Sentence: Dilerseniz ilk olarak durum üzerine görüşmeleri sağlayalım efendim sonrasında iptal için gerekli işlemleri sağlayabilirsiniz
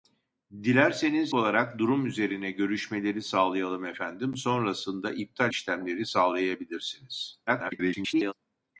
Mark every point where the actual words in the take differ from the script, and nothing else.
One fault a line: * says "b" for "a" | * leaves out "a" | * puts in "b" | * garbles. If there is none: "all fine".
* leaves out "ilk"
* leaves out "için gerekli"
* garbles